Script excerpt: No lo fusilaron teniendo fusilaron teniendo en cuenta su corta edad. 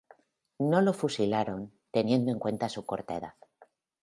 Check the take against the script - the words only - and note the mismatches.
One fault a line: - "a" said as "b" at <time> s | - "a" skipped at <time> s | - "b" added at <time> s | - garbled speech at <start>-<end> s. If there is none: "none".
- "fusilaron teniendo" skipped at 2.3 s